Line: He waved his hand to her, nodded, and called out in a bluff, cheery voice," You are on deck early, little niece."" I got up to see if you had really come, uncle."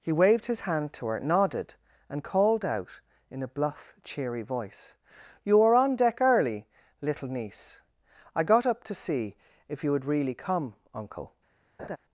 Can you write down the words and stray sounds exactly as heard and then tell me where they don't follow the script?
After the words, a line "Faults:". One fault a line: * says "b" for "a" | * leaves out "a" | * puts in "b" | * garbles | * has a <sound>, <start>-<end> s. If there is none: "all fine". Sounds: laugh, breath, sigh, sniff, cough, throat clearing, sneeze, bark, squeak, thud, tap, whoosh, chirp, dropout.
He waved his hand to her, nodded, and called out in a bluff, cheery voice," You are on deck early, little niece."" I got up to see if you had really come, uncle."
Faults:
* has a laugh, 11.8-12.0 s